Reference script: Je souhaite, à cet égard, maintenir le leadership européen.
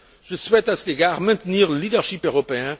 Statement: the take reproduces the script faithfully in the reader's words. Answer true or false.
true